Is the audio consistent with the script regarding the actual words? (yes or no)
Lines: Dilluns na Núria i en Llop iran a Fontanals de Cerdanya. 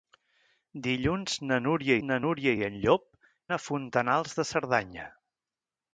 no